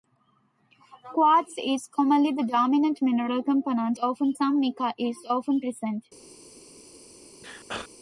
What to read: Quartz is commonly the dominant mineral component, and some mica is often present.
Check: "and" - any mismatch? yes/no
yes